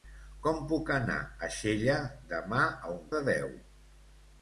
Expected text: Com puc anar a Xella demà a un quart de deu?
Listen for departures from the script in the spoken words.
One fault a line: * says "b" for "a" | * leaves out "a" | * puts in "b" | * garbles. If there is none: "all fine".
* leaves out "quart"